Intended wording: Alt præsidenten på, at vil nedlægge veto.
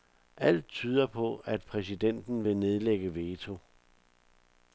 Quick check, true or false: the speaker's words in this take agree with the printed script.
false